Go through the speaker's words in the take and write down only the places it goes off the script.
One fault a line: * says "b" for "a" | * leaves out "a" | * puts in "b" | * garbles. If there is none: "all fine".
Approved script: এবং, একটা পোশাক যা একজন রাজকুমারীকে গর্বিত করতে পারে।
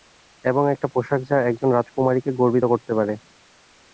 all fine